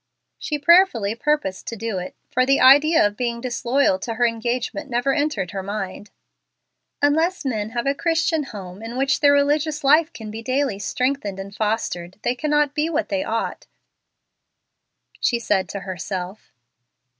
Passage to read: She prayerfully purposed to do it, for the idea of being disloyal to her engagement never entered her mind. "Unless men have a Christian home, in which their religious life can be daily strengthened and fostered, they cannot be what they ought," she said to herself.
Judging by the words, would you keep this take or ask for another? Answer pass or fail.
pass